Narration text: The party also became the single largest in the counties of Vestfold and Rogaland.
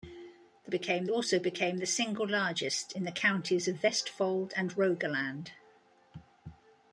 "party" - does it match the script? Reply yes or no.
no